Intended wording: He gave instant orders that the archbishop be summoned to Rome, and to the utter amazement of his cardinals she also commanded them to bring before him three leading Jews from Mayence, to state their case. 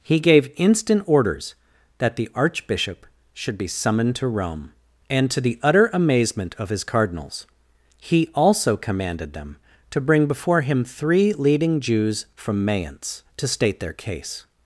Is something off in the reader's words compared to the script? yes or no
yes